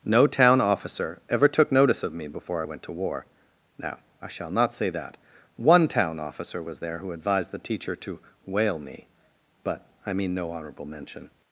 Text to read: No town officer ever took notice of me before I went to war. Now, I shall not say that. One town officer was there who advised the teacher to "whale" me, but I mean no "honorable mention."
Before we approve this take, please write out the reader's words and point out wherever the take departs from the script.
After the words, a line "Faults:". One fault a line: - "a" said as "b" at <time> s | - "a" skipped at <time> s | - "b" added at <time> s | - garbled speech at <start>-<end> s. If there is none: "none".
No town officer ever took notice of me before I went to war. Now, I shall not say that. One town officer was there who advised the teacher to "whale" me, but I mean no "honorable mention."
Faults:
none